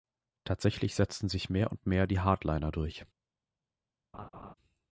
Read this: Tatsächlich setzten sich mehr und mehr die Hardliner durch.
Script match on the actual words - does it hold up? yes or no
yes